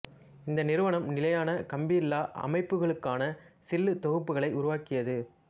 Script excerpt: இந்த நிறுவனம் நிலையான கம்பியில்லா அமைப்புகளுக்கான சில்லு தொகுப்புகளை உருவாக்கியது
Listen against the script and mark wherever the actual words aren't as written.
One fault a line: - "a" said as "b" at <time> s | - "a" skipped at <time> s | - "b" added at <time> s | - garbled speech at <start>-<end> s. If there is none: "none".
none